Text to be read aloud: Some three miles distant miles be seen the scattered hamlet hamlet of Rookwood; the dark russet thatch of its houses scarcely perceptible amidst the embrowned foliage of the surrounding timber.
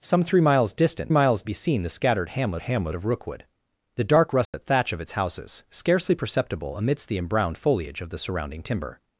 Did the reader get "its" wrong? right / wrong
right